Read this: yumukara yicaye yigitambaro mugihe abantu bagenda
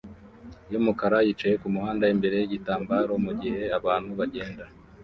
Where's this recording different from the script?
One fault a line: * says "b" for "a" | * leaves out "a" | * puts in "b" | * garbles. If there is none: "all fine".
* puts in "kumuhanda imbere"